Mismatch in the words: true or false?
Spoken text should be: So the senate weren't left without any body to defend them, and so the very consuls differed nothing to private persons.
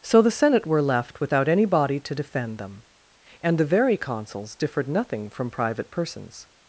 true